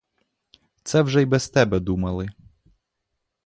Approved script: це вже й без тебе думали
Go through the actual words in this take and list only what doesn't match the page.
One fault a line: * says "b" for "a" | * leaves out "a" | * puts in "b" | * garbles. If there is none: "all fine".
all fine